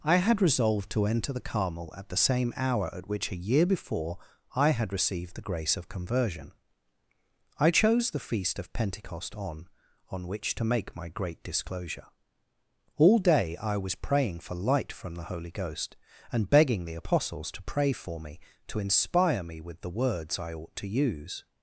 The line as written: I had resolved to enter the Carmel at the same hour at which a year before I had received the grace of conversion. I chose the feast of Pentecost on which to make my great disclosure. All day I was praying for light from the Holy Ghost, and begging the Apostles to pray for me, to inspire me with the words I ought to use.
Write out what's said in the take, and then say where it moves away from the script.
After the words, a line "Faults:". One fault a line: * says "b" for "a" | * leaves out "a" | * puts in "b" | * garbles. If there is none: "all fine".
I had resolved to enter the Carmel at the same hour at which a year before I had received the grace of conversion. I chose the feast of Pentecost on on which to make my great disclosure. All day I was praying for light from the Holy Ghost, and begging the Apostles to pray for me, to inspire me with the words I ought to use.
Faults:
* puts in "on"